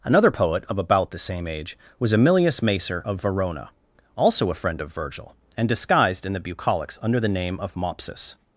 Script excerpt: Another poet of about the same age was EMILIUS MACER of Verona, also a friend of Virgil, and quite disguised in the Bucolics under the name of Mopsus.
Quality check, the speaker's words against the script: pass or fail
fail